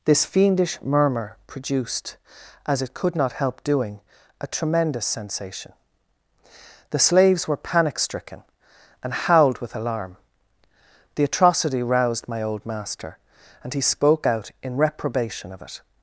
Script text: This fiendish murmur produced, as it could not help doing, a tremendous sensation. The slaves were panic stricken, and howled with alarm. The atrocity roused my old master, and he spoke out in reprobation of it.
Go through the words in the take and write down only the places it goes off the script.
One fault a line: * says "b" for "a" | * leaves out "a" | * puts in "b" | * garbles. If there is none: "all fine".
all fine